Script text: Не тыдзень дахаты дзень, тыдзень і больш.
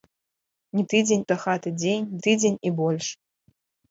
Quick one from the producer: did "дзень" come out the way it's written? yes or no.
yes